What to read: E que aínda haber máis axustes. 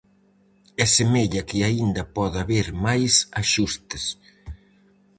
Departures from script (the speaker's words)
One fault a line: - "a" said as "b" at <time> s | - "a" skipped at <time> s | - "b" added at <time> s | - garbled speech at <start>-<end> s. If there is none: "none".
- "semella" added at 1.0 s
- "pode" added at 2.2 s